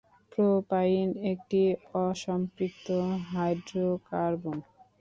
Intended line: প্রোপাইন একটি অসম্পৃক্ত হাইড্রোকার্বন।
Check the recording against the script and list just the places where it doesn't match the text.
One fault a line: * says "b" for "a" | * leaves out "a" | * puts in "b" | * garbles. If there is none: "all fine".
all fine